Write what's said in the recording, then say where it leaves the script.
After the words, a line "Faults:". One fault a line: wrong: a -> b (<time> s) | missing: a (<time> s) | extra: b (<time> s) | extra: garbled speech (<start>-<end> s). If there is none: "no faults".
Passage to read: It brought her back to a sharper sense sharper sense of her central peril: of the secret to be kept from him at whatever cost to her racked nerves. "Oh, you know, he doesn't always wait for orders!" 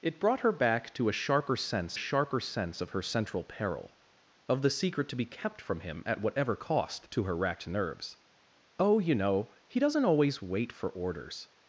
It brought her back to a sharper sense sharper sense of her central peril: of the secret to be kept from him at whatever cost to her racked nerves. "Oh, you know, he doesn't always wait for orders!"
Faults:
no faults